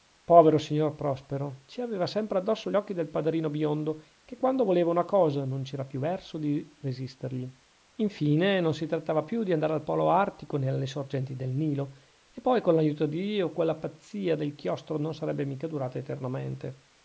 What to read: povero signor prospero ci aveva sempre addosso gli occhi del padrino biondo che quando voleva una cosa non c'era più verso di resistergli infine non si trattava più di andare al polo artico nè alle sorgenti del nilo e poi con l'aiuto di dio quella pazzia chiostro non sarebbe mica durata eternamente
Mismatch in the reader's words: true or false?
true